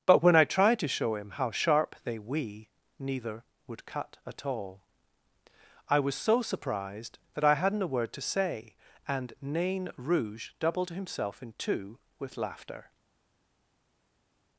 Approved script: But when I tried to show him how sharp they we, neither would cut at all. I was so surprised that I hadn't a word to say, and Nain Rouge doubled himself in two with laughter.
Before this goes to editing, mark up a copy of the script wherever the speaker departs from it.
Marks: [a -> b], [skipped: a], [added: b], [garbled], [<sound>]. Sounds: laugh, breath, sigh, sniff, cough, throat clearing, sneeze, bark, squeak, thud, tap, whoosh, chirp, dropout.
But when I tried to show him how sharp they we, neither would cut at all. I was so surprised that I hadn't a word to say, and Nain Rouge doubled himself in two with laughter.